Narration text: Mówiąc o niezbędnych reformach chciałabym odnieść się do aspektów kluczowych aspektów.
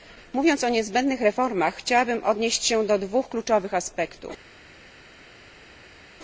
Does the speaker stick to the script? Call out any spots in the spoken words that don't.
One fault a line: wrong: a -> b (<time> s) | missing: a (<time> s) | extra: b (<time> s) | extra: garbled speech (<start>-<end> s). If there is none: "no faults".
wrong: aspektów -> dwóch (3.0 s)